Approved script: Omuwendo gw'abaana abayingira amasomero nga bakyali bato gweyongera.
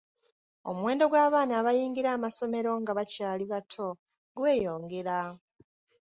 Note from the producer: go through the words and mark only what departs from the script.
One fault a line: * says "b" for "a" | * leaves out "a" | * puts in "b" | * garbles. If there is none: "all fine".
all fine